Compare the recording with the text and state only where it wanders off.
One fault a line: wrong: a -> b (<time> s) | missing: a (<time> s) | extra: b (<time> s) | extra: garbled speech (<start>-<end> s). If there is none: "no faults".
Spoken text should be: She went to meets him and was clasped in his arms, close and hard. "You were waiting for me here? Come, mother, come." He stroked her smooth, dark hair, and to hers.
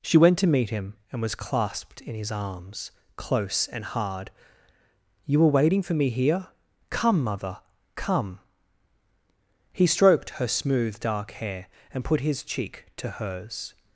wrong: meets -> meet (0.5 s)
extra: put his cheek (12.0 s)